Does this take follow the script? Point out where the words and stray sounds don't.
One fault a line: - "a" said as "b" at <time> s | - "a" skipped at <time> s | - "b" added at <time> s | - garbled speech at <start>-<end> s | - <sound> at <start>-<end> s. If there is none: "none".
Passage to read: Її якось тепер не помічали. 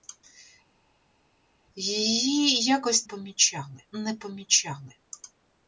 - "тепер" said as "помічали" at 3.0 s